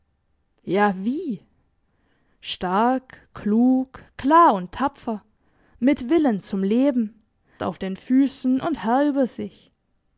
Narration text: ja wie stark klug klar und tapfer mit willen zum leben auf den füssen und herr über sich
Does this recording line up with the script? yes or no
yes